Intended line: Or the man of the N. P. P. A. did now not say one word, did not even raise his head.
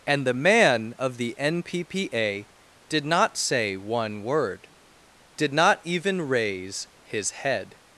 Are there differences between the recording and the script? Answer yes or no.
yes